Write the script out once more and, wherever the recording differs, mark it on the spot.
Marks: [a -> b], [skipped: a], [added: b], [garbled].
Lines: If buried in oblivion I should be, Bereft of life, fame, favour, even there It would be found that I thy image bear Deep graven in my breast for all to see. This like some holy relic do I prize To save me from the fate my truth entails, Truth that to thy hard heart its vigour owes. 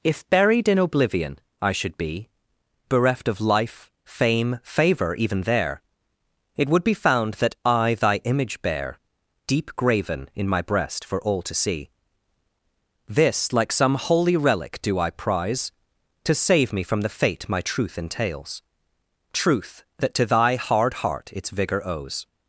If buried in oblivion I should be, Bereft of life, fame, favour, even there It would be found that I thy image bear Deep graven in my breast for all to see. This like some holy relic do I prize To save me from the fate my truth entails, Truth that to thy hard heart its vigour owes.